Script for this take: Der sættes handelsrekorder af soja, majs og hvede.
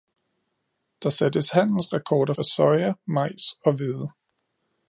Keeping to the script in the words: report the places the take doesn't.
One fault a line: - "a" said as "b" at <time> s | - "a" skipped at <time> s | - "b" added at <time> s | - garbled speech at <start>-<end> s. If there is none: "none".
none